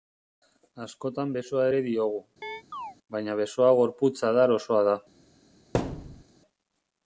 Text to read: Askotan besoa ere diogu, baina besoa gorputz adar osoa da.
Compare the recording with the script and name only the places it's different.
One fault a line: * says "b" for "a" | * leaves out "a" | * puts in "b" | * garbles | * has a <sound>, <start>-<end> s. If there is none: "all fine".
* has a chirp, 2.4-3.0 s
* has a thud, 5.7-6.2 s